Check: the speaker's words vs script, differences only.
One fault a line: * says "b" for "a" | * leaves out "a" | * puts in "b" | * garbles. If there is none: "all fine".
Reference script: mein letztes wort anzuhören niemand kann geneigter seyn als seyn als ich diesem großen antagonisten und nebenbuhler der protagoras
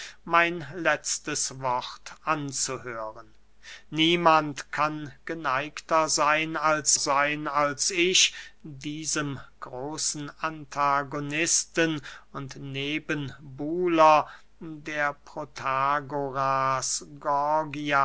all fine